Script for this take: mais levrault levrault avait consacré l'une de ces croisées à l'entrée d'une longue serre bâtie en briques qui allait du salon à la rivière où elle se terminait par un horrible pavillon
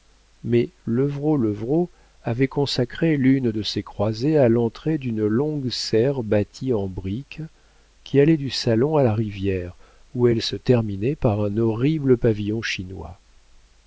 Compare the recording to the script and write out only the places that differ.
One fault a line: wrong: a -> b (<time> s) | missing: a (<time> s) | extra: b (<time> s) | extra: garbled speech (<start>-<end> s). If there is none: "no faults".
no faults